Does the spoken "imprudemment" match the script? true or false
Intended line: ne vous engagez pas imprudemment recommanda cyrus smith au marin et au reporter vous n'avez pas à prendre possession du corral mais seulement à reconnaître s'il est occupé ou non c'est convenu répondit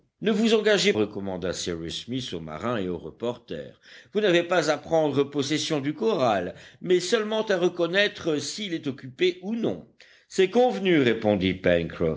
false